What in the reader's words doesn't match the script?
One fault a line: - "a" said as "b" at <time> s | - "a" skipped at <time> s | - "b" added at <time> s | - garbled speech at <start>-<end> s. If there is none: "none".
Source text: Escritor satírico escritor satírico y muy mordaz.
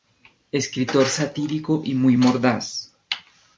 - "escritor satírico" skipped at 1.8 s